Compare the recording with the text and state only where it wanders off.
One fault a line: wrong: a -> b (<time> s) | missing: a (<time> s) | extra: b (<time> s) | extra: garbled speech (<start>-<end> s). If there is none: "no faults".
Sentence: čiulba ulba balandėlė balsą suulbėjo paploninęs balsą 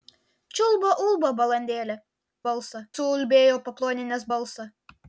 no faults